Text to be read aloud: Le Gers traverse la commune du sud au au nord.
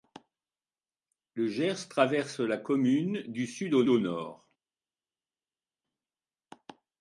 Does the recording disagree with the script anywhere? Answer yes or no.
no